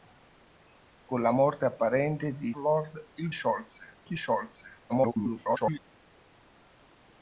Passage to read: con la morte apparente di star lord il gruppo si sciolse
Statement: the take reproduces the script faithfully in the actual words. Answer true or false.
false